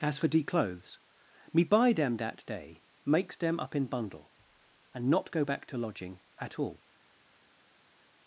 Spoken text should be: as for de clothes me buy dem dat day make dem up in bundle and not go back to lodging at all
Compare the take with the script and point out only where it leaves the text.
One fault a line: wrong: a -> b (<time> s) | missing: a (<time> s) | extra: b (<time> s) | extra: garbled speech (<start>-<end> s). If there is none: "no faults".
wrong: make -> makes (3.0 s)